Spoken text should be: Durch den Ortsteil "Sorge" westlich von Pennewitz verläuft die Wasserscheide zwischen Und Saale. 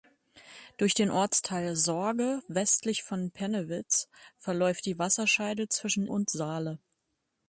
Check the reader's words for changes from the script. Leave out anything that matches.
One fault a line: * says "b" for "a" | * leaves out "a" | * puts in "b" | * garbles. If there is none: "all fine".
all fine